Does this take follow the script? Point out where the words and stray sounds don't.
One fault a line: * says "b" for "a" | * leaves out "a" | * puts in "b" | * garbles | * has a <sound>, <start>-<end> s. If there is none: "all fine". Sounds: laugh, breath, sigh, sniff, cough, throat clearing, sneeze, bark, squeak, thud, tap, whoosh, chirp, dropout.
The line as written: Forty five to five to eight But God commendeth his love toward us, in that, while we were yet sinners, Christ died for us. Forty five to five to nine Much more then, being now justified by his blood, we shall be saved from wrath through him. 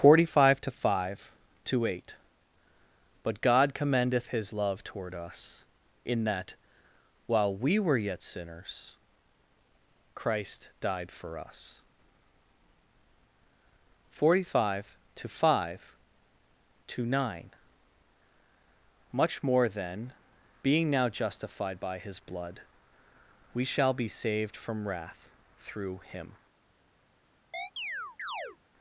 * has a chirp, 27.5-28.6 s